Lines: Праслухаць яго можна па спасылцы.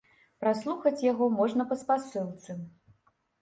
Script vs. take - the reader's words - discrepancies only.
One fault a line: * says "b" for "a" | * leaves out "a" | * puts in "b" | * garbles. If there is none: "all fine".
all fine